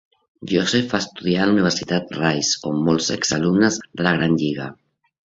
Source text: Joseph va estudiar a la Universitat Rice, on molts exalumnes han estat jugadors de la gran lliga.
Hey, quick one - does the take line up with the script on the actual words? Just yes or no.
no